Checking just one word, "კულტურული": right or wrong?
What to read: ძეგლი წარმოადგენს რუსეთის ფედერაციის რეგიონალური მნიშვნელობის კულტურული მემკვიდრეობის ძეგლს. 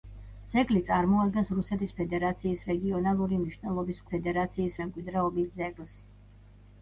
wrong